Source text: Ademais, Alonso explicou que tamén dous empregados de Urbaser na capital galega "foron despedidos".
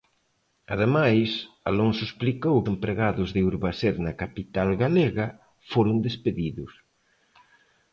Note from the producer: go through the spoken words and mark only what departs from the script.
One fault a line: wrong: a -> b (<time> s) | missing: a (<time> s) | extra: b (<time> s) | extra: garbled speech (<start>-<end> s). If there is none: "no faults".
missing: que tamén dous (2.6 s)